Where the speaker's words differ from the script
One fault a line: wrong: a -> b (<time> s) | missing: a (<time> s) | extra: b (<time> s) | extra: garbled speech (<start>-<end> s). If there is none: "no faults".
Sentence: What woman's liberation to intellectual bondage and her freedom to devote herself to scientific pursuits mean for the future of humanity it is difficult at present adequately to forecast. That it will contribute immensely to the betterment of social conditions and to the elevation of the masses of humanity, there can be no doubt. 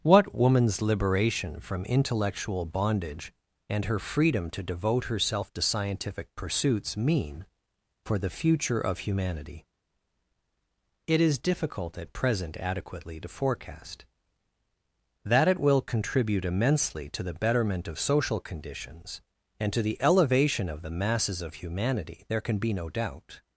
wrong: to -> from (1.6 s)